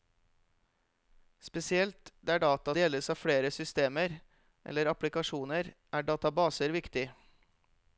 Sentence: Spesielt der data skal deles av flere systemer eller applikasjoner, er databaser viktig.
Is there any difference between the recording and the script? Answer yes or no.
yes